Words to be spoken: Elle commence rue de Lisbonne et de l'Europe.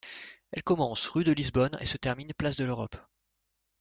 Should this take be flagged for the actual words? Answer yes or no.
yes